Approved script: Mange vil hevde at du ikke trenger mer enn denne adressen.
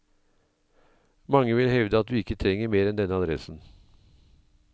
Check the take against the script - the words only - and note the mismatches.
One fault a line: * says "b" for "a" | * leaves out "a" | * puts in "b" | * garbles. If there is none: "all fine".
all fine